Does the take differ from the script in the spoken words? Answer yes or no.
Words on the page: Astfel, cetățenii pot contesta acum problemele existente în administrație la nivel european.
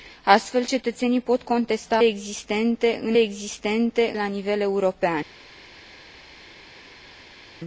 yes